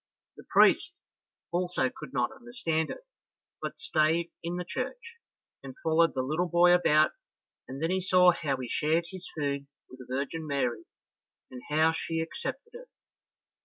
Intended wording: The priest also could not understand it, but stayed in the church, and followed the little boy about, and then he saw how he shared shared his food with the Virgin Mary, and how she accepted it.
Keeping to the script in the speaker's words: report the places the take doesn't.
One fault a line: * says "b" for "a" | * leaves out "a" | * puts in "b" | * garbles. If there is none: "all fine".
* leaves out "shared"